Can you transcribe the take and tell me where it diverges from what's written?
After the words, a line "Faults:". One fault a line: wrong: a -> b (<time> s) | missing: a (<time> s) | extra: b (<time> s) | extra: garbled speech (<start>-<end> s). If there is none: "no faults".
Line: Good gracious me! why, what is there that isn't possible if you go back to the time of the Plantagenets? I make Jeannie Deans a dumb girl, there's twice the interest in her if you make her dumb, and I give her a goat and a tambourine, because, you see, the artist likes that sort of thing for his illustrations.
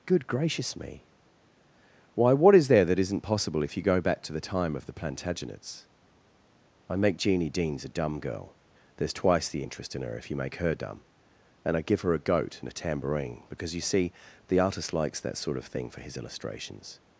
Good gracious me! why, what is there that isn't possible if you go back to the time of the Plantagenets? I make Jeannie Deans a dumb girl, there's twice the interest in her if you make her dumb, and I give her a goat and a tambourine, because, you see, the artist likes that sort of thing for his illustrations.
Faults:
no faults